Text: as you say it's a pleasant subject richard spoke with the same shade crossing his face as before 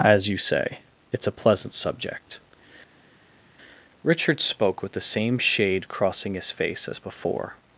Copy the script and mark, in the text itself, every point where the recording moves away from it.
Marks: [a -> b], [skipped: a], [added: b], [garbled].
as you say it's a pleasant subject richard spoke with the same shade crossing his face as before